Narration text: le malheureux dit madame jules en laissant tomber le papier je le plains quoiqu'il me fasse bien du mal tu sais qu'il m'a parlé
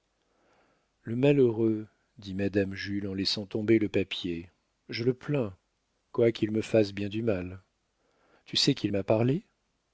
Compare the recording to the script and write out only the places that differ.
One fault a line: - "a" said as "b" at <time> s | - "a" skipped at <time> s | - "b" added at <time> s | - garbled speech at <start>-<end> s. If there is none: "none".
none